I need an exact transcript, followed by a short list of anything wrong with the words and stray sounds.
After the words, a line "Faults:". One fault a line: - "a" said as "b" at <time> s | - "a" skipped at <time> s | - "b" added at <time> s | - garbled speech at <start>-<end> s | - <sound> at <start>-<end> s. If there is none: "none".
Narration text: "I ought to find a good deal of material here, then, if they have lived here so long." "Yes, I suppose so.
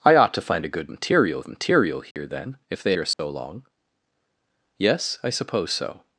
"I ought to find a good material of material here, then, if they here so long." "Yes, I suppose so.
Faults:
- "deal" said as "material" at 0.9 s
- dropout at 2.1-2.2 s
- "have lived" skipped at 2.9 s
- dropout at 3.1-3.2 s